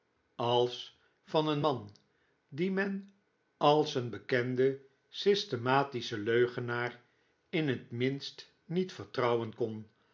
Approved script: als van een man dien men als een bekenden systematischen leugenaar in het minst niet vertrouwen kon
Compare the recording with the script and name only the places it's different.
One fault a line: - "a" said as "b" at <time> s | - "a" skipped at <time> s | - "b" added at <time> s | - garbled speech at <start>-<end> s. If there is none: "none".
none